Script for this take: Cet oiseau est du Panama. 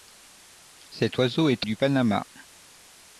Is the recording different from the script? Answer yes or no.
no